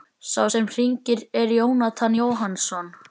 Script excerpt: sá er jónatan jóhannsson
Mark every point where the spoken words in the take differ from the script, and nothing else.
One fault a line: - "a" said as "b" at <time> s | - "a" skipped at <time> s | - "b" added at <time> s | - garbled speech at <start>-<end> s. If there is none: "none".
- "sem hringir" added at 0.5 s